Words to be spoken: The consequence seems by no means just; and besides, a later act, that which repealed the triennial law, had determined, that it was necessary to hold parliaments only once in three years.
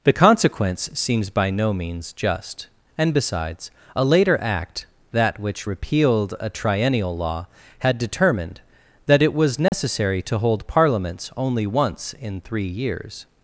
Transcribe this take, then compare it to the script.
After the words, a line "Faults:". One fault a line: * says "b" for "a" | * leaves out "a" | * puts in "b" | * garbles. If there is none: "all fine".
The consequence seems by no means just; and besides, a later act, that which repealed a triennial law, had determined, that it was necessary to hold parliaments only once in three years.
Faults:
* says "a" for "the"